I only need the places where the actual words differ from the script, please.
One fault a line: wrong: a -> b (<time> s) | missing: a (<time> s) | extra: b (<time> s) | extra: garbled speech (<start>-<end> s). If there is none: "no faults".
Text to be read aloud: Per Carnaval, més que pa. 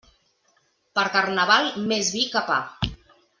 extra: vi (2.2 s)